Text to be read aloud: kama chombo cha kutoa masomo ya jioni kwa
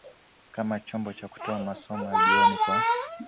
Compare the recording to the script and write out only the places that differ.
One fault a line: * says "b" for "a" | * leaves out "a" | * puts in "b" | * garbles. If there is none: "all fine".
all fine